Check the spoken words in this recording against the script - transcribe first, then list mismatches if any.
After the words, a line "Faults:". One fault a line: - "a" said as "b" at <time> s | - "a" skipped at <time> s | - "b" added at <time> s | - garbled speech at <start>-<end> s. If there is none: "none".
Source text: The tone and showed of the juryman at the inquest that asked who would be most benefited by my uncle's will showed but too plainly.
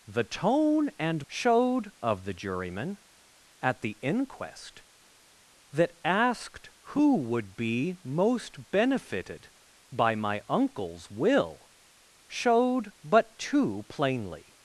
The tone and showed of the juryman at the inquest that asked who would be most benefited by my uncle's will showed but too plainly.
Faults:
none